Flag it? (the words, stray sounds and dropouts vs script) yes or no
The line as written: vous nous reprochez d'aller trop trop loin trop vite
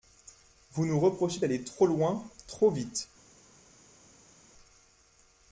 yes